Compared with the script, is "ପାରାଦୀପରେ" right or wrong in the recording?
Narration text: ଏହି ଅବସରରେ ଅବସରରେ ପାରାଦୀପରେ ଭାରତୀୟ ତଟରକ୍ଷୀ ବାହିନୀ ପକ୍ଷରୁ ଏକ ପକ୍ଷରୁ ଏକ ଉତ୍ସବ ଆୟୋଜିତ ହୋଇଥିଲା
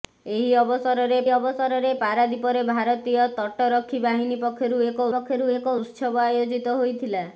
right